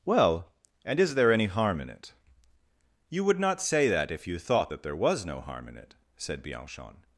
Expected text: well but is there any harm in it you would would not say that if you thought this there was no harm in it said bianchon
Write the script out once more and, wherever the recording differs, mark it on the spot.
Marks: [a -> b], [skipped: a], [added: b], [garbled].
well [but -> and] is there any harm in it you would [skipped: would] not say that if you thought [this -> that] there was no harm in it said bianchon